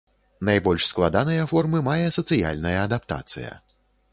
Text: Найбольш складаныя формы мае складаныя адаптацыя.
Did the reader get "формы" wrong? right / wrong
right